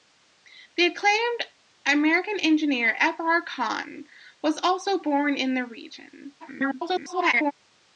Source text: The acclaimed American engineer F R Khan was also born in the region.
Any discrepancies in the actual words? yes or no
yes